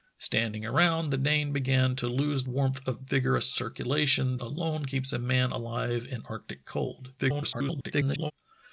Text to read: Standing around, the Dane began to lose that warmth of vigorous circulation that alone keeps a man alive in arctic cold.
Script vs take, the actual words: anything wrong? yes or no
yes